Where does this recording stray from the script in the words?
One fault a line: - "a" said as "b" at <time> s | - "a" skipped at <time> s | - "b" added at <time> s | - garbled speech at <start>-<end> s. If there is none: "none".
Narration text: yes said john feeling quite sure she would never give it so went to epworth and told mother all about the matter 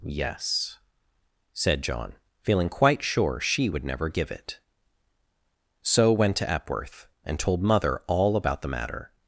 none